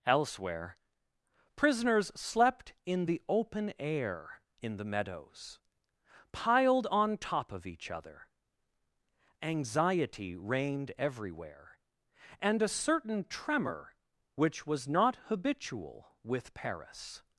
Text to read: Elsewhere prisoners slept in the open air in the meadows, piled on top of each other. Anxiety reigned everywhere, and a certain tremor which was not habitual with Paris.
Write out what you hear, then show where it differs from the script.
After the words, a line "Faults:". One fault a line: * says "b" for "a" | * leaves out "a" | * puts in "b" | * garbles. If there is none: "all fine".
Elsewhere prisoners slept in the open air in the meadows, piled on top of each other. Anxiety reigned everywhere, and a certain tremor which was not habitual with Paris.
Faults:
all fine